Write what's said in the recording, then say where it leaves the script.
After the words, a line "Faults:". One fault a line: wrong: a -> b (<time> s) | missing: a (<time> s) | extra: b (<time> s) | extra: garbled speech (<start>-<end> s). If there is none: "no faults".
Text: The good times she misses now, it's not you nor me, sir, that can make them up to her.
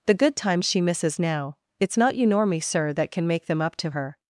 The good times she misses now, it's not you nor me, sir, that can make them up to her.
Faults:
no faults